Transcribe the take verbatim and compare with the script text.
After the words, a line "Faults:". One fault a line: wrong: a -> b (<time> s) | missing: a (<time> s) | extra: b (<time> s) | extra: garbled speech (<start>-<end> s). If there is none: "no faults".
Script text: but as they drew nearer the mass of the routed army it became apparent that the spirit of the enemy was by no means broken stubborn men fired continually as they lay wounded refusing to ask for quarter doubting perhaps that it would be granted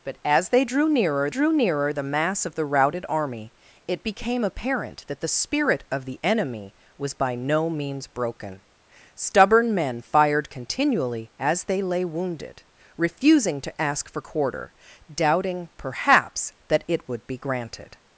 but as they drew nearer drew nearer the mass of the routed army it became apparent that the spirit of the enemy was by no means broken stubborn men fired continually as they lay wounded refusing to ask for quarter doubting perhaps that it would be granted
Faults:
extra: drew nearer (1.3 s)